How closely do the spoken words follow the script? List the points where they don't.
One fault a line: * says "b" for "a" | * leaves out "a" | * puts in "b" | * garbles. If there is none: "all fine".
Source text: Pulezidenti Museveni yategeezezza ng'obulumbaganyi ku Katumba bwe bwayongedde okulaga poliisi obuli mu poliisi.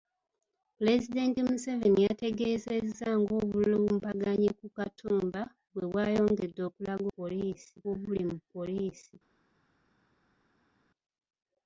all fine